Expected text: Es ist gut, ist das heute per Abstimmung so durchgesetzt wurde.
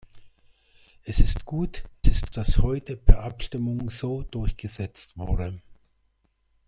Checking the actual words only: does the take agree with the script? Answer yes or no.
yes